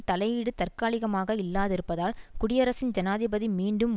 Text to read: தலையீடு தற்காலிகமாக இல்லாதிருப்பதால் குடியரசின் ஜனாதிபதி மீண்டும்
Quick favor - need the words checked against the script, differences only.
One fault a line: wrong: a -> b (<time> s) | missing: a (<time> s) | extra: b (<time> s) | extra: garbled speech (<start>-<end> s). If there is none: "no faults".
no faults